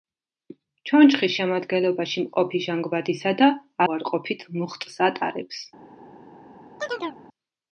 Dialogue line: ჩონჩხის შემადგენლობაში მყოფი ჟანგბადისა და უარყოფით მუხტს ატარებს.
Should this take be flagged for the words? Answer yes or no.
no